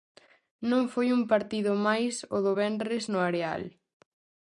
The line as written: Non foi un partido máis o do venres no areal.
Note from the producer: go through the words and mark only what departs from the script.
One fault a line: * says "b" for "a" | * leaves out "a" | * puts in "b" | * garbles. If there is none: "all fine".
all fine